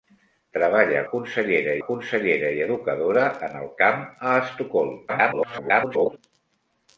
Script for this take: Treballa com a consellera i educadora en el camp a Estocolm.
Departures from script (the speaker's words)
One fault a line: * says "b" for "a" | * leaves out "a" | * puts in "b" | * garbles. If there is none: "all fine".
* says "consellera" for "com"
* garbles